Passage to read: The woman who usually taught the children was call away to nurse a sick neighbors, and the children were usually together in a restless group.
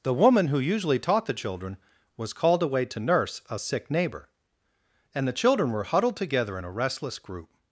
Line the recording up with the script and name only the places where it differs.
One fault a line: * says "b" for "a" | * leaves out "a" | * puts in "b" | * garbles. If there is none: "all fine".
* says "called" for "call"
* says "neighbor" for "neighbors"
* says "huddled" for "usually"